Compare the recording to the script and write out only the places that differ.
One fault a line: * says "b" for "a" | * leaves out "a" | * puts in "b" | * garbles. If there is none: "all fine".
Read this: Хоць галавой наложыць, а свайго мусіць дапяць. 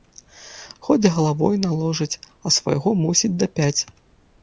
all fine